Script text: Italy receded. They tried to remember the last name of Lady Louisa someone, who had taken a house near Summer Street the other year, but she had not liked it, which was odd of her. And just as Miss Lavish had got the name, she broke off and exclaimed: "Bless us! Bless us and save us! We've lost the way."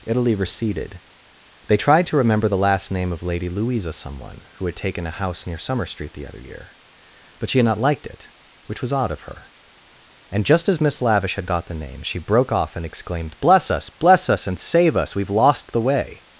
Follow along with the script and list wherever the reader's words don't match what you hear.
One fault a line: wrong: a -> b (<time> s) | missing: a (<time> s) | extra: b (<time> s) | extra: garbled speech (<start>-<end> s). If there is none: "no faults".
no faults